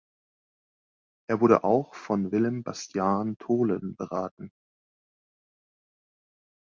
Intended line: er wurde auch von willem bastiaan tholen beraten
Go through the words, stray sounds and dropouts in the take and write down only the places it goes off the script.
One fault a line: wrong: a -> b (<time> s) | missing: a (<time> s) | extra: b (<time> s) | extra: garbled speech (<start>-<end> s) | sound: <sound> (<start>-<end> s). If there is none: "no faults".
no faults